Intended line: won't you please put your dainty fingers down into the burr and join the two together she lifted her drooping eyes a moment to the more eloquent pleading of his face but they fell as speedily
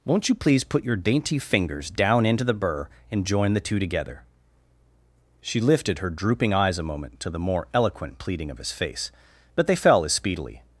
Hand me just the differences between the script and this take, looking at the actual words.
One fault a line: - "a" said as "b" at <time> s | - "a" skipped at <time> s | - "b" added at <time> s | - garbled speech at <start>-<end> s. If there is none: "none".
none